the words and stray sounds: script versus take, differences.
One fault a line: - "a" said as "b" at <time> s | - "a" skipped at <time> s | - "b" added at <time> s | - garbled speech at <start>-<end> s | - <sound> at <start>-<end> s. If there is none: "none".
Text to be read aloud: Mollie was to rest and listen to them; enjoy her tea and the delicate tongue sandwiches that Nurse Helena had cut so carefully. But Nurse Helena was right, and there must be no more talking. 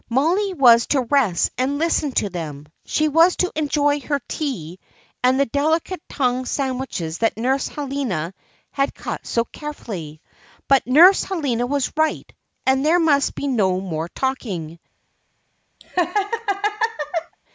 - "she was to" added at 2.9 s
- laugh at 15.8-17.4 s